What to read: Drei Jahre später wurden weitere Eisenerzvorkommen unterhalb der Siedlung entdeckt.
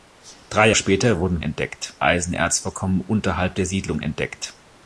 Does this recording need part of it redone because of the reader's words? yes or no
yes